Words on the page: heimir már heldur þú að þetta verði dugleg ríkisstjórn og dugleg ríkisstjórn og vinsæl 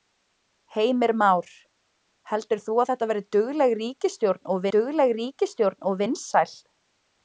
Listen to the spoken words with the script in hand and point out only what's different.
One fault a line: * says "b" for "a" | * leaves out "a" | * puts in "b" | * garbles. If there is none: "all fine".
all fine